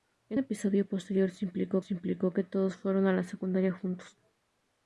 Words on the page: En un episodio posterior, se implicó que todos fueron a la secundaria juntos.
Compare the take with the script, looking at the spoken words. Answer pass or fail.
fail